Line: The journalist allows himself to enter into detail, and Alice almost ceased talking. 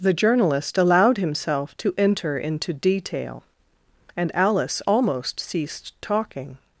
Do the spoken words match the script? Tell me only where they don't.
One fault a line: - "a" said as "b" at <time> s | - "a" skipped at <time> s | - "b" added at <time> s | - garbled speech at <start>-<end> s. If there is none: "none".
- "allows" said as "allowed" at 0.8 s